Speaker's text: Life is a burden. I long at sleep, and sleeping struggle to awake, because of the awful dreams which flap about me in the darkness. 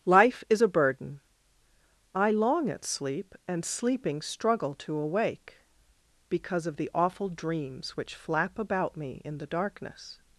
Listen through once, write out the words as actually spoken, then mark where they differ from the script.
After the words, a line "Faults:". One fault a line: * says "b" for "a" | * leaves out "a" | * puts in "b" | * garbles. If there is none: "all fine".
Life is a burden. I long at sleep, and sleeping struggle to awake, because of the awful dreams which flap about me in the darkness.
Faults:
all fine